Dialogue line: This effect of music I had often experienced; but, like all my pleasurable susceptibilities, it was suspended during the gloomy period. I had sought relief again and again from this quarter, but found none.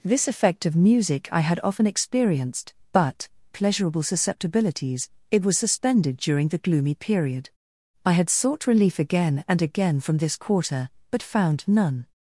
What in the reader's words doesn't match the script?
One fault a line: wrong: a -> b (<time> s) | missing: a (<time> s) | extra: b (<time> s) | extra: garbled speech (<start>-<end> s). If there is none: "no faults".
missing: like all my (3.3 s)